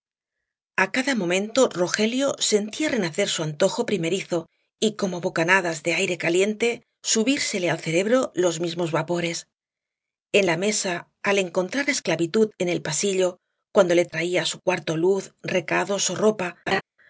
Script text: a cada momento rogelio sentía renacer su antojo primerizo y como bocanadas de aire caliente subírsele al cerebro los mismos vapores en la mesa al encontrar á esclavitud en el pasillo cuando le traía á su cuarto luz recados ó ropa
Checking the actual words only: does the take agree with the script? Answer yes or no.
yes